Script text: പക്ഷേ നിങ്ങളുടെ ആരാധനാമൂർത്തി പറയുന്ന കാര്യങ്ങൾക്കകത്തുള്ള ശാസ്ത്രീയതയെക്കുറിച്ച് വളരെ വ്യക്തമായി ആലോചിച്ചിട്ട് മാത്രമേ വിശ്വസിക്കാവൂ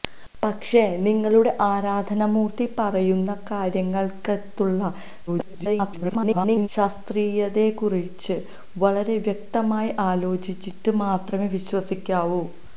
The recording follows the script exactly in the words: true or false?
false